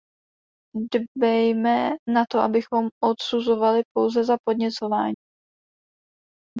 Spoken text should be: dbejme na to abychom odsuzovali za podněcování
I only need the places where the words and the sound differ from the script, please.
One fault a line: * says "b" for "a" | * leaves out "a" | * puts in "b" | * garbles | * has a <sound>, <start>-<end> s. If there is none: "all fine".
* puts in "pouze"